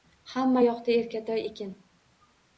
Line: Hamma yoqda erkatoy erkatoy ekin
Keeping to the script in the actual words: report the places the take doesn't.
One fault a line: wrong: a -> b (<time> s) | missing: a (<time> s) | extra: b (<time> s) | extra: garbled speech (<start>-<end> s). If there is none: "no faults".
missing: erkatoy (1.4 s)